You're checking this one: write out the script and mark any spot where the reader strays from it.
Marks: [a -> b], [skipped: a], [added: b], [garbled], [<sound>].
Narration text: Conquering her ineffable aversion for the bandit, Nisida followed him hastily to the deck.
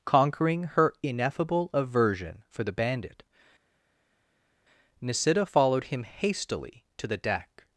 Conquering her ineffable aversion for the bandit, Nisida followed him hastily to the deck.